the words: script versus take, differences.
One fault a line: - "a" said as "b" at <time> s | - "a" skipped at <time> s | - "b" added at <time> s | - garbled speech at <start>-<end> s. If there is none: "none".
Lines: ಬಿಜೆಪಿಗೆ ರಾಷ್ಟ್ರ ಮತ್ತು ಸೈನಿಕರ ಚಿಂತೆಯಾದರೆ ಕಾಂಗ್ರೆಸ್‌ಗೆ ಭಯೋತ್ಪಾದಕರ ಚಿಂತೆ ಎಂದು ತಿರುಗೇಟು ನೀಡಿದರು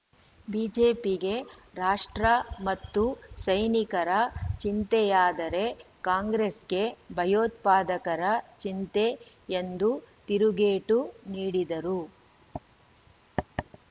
none